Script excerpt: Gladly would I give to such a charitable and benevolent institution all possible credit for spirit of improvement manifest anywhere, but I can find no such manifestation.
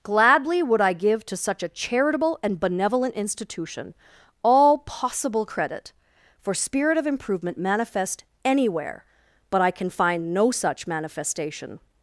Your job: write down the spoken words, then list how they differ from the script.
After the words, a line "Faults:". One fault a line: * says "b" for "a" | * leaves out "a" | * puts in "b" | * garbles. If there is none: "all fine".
Gladly would I give to such a charitable and benevolent institution all possible credit for spirit of improvement manifest anywhere, but I can find no such manifestation.
Faults:
all fine